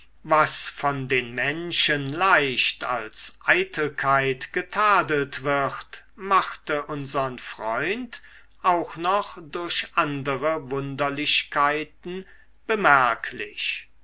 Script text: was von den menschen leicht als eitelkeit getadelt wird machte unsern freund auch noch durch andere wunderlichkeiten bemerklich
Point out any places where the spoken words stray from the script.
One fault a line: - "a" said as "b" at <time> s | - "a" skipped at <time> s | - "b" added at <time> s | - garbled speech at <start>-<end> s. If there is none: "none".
none